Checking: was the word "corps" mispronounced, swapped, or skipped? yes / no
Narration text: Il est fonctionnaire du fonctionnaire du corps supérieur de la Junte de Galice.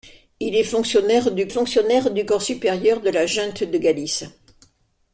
no